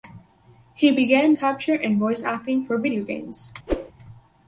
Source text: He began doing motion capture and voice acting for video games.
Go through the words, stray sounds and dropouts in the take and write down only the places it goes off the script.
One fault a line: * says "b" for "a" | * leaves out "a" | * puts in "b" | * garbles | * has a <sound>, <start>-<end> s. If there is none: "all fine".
* leaves out "doing motion"
* has a whoosh, 3.7-3.9 s